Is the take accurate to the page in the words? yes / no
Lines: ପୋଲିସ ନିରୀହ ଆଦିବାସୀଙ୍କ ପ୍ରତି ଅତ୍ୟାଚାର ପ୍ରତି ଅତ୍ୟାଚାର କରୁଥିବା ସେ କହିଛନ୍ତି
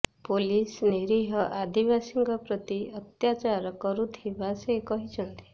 no